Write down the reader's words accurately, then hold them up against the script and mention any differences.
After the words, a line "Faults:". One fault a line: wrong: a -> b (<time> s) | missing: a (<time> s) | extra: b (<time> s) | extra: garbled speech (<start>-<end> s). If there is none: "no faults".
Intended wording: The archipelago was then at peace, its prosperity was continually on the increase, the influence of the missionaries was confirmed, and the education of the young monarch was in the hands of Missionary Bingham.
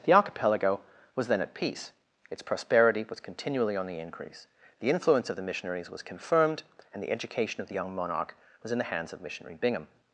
The archipelago was then at peace, its prosperity was continually on the increase, the influence of the missionaries was confirmed, and the education of the young monarch was in the hands of Missionary Bingham.
Faults:
no faults